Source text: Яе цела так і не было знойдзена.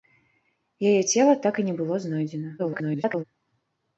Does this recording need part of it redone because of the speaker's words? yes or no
yes